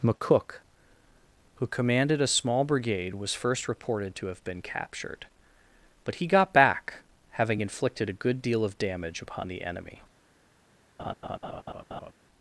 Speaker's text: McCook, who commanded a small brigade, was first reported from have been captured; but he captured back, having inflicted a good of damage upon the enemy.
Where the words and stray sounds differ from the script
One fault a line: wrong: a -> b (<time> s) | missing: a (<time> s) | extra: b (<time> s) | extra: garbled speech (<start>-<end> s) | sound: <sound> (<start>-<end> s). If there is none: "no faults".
wrong: from -> to (4.2 s)
wrong: captured -> got (6.2 s)
extra: deal (8.4 s)
sound: laugh (11.0-12.1 s)